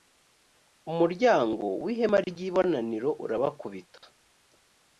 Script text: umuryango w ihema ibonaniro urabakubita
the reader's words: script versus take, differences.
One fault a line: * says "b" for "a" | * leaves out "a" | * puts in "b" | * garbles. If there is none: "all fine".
* puts in "ry"